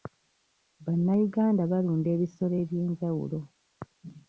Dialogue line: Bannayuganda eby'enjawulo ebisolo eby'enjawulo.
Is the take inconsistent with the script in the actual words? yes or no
yes